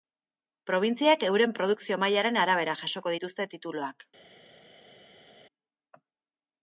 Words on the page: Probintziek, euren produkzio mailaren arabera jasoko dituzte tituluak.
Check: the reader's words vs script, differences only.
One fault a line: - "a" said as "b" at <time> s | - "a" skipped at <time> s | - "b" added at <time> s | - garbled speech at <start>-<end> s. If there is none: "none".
none